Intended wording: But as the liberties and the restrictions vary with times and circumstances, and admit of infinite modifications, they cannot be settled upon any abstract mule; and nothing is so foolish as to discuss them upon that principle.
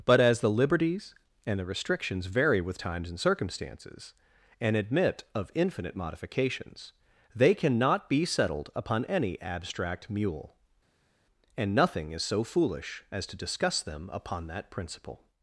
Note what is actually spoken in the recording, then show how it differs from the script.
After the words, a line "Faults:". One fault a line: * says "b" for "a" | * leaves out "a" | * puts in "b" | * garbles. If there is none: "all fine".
But as the liberties and the restrictions vary with times and circumstances, and admit of infinite modifications, they cannot be settled upon any abstract mule; and nothing is so foolish as to discuss them upon that principle.
Faults:
all fine